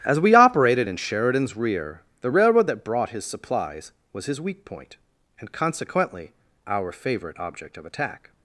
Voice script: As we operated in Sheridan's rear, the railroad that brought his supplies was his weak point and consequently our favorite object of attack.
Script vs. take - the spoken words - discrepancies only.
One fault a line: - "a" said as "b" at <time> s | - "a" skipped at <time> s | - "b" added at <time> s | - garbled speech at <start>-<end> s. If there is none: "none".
none